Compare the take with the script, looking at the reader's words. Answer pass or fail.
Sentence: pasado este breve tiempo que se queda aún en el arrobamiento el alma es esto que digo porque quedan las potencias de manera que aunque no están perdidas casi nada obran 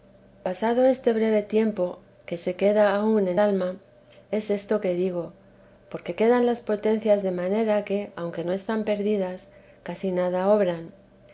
fail